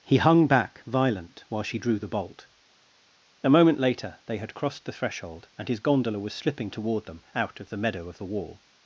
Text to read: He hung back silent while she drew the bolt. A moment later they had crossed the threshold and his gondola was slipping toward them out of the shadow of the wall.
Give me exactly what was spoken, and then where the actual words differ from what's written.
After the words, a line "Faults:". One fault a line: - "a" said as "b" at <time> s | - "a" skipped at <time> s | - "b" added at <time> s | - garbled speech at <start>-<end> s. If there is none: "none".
He hung back violent while she drew the bolt. A moment later they had crossed the threshold and his gondola was slipping toward them out of the meadow of the wall.
Faults:
- "silent" said as "violent" at 0.8 s
- "shadow" said as "meadow" at 7.8 s